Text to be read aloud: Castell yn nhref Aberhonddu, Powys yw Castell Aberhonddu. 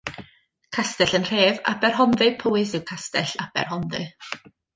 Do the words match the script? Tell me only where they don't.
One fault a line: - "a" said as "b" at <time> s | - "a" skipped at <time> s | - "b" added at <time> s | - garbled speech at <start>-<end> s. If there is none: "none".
none